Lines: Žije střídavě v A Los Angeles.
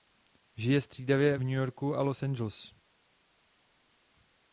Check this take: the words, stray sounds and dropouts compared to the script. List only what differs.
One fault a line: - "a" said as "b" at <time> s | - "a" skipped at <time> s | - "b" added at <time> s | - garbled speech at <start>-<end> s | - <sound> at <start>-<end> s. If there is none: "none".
- "New Yorku" added at 1.4 s